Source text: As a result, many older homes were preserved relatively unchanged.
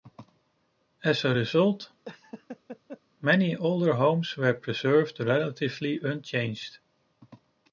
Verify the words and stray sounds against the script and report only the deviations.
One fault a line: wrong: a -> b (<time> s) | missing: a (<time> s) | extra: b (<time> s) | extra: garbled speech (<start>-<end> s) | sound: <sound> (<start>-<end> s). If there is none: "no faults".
sound: laugh (2.1-3.0 s)